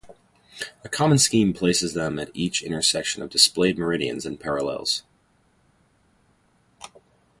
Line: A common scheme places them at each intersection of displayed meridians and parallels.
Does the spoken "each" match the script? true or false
true